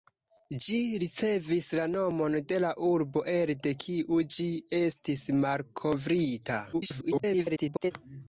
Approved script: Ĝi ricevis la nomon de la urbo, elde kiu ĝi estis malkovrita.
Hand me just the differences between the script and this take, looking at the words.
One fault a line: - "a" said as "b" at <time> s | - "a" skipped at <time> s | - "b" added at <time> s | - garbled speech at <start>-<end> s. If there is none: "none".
- garbled speech at 6.7-7.9 s